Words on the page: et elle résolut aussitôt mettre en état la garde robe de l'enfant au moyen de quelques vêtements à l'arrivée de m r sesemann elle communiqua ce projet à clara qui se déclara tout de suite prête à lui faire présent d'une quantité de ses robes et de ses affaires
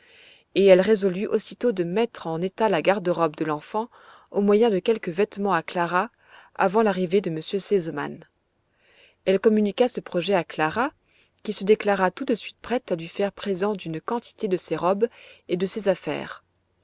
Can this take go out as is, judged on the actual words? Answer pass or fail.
fail